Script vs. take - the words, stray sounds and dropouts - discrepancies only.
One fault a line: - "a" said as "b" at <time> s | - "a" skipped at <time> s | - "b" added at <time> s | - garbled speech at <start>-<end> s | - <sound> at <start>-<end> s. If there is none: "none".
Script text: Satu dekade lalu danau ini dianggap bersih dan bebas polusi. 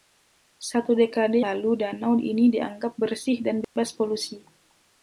- dropout at 3.6-3.8 s